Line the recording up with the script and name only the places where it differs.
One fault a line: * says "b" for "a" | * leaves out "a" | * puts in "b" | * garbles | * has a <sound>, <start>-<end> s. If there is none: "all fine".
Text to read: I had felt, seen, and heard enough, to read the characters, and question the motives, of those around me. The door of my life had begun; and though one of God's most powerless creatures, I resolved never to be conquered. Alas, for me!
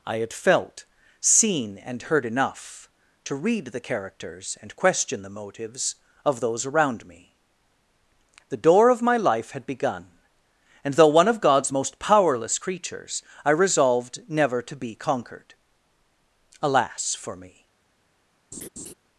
* has a laugh, 18.5-18.9 s